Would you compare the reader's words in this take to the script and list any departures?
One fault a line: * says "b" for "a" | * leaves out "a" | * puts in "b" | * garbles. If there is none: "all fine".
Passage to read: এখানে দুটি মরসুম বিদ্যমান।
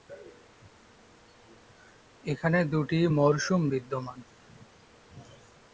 all fine